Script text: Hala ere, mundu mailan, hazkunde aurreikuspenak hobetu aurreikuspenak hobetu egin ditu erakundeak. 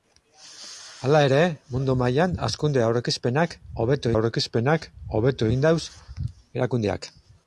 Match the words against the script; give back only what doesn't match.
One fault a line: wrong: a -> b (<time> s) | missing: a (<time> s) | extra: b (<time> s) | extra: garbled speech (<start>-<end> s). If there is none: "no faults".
no faults